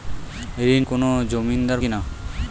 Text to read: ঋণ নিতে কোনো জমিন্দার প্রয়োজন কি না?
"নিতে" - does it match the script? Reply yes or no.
no